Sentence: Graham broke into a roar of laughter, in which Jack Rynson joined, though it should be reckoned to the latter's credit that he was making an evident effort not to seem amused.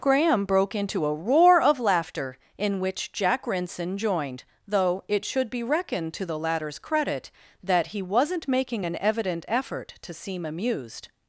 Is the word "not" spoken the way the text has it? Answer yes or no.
no